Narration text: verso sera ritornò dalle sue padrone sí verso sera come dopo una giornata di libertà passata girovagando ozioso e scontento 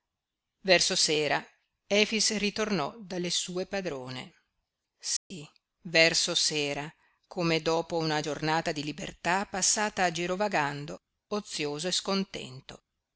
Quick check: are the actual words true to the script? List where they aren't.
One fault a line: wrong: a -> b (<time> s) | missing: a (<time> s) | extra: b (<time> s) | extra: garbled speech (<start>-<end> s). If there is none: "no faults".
extra: efix (1.9 s)